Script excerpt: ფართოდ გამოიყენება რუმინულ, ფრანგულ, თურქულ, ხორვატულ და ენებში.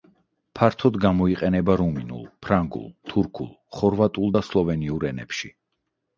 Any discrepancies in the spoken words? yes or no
yes